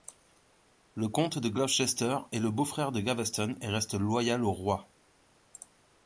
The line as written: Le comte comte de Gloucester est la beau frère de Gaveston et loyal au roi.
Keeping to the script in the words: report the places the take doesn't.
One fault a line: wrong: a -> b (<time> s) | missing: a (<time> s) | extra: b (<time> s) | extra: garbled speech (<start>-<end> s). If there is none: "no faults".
missing: comte (1.4 s)
wrong: la -> le (2.4 s)
extra: reste (3.7 s)